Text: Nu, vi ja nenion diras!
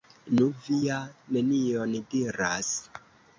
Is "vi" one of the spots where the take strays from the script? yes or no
no